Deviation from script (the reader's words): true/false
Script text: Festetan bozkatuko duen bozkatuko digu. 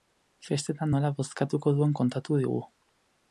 true